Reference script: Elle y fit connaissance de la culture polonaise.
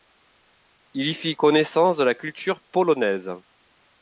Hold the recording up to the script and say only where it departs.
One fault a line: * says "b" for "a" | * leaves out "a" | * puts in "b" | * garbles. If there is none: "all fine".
* says "Il" for "Elle"